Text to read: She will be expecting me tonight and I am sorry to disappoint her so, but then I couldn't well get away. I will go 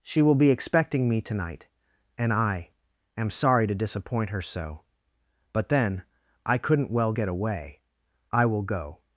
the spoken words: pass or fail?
pass